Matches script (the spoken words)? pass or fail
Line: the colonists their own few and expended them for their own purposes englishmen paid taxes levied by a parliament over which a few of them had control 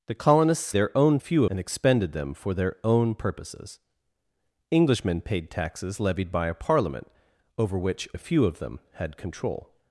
pass